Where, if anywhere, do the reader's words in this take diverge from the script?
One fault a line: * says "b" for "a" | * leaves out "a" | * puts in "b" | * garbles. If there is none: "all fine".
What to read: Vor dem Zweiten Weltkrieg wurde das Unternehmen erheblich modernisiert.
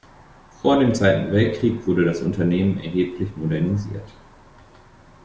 all fine